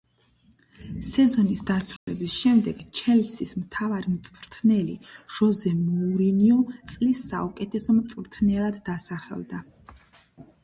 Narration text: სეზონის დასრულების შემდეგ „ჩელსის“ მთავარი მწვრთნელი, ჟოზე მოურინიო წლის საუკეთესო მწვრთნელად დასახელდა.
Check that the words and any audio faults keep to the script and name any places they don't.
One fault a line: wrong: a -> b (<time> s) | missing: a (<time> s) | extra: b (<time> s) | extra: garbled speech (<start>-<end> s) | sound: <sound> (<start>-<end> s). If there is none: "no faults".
sound: dropout (2.0-2.1 s)